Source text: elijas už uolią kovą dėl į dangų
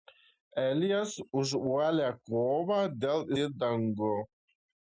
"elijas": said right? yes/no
yes